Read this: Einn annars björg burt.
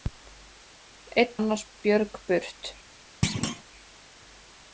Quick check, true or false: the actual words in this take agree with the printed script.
true